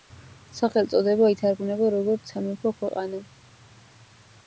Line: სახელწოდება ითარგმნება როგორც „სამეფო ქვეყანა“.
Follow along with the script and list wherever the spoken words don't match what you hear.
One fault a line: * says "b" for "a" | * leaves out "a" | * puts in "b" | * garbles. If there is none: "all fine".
all fine